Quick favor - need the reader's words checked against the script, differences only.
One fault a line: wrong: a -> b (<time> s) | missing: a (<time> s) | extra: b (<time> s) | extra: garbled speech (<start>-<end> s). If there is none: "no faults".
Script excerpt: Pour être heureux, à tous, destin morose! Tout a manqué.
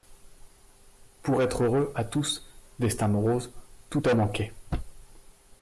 no faults